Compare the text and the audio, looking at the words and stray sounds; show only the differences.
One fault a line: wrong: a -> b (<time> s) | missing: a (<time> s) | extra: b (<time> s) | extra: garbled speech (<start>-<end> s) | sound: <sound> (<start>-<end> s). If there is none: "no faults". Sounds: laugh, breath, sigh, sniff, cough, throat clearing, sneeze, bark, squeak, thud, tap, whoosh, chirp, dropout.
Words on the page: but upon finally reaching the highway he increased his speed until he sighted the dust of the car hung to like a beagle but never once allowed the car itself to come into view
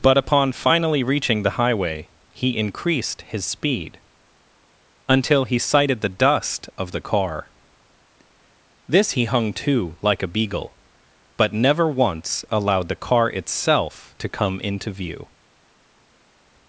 extra: this he (8.9 s)